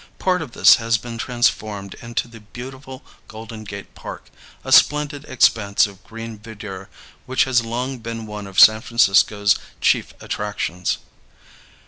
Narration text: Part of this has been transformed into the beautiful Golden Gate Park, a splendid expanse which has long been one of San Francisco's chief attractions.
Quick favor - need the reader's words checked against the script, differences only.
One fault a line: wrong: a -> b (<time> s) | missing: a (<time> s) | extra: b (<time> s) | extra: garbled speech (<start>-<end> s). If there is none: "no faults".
extra: of green verdure (5.9 s)